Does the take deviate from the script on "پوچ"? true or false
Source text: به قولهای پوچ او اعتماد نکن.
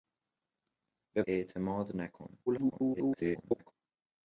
true